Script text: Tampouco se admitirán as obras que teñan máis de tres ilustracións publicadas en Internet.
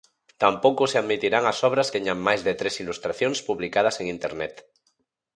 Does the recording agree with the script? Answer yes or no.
no